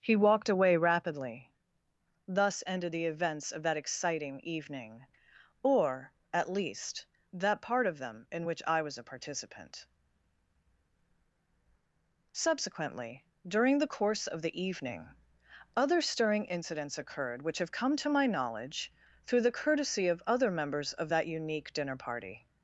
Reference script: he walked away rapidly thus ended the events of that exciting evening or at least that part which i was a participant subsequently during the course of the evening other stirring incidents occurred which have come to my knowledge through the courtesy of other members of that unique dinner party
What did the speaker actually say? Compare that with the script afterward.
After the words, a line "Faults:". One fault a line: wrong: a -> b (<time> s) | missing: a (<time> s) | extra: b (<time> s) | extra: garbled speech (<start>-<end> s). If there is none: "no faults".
he walked away rapidly thus ended the events of that exciting evening or at least that part of them in which i was a participant subsequently during the course of the evening other stirring incidents occurred which have come to my knowledge through the courtesy of other members of that unique dinner party
Faults:
extra: of them in (7.9 s)